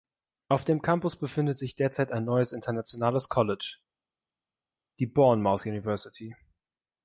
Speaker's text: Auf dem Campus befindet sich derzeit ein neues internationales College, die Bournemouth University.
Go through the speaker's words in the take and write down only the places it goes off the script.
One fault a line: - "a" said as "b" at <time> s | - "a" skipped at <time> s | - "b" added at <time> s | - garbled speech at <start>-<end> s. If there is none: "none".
none